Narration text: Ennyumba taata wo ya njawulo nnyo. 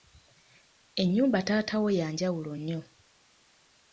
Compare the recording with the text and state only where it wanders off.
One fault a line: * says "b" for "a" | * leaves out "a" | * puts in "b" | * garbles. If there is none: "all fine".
all fine